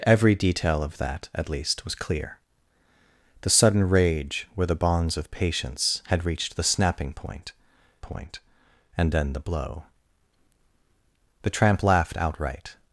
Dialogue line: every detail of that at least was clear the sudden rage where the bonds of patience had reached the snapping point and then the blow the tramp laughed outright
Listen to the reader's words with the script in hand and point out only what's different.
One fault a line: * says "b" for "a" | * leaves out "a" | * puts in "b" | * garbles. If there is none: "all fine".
* puts in "point"